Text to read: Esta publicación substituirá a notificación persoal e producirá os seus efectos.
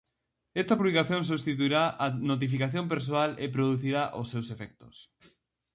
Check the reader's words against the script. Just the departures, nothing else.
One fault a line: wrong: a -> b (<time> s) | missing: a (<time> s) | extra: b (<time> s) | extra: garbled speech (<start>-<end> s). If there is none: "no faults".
no faults